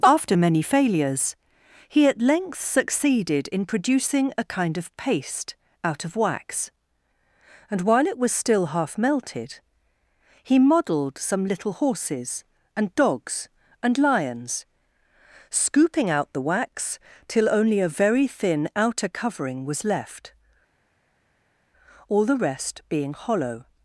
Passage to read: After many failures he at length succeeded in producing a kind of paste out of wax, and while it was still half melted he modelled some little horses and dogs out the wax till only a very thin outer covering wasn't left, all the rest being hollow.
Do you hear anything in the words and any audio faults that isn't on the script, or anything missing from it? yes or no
yes